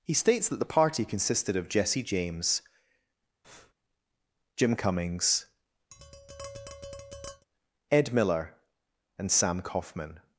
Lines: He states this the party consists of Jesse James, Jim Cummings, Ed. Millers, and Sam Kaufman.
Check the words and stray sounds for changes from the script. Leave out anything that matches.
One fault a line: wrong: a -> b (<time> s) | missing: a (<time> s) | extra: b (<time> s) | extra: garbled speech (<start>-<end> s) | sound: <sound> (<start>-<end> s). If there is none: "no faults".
wrong: this -> that (0.5 s)
wrong: consists -> consisted (1.0 s)
sound: breath (3.4-3.7 s)
sound: tap (5.9-7.5 s)
wrong: Millers -> Miller (8.1 s)